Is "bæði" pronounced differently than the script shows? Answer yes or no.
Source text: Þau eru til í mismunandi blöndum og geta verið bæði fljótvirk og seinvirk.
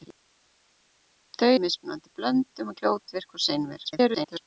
yes